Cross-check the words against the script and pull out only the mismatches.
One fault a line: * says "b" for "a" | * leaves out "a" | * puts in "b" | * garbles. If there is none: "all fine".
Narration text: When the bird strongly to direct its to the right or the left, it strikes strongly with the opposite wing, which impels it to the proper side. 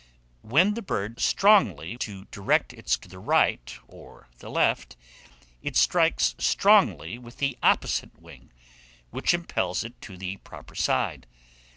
all fine